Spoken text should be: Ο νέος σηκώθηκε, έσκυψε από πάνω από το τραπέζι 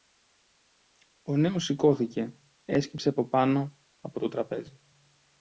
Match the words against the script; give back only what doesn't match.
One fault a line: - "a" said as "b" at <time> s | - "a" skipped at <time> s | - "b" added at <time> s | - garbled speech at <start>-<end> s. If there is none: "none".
none